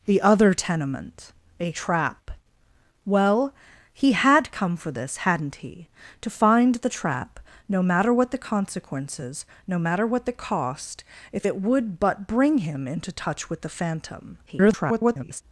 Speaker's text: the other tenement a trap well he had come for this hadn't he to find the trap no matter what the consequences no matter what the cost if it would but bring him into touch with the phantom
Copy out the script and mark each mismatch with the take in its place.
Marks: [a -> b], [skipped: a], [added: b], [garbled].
the other tenement a trap well he had come for this hadn't he to find the trap no matter what the consequences no matter what the cost if it would but bring him into touch with the phantom [garbled]